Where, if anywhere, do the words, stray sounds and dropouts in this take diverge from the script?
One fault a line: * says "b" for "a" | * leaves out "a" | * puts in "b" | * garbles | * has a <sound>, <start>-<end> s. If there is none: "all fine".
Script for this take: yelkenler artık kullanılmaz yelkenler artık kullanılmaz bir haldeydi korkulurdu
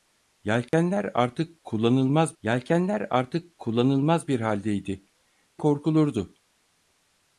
* has a dropout, 0.7-0.7 s